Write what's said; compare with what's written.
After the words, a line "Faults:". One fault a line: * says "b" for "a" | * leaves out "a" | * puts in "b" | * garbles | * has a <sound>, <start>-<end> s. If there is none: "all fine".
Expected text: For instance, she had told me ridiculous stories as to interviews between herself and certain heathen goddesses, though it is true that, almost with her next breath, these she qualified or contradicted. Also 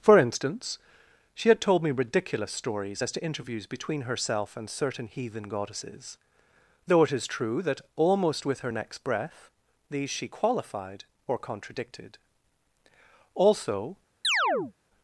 For instance, she had told me ridiculous stories as to interviews between herself and certain heathen goddesses, though it is true that, almost with her next breath, these she qualified or contradicted. Also
Faults:
* has a chirp, 14.2-14.7 s